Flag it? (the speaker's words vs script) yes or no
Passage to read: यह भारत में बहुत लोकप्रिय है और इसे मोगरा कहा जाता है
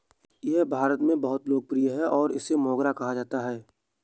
no